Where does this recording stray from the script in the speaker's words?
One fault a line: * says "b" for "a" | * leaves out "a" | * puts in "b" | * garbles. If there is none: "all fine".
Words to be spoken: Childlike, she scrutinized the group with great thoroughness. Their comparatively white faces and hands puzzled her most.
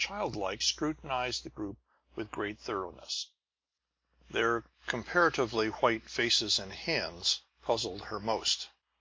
* leaves out "she"